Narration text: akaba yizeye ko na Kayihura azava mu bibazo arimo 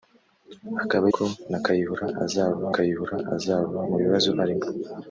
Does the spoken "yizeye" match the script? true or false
false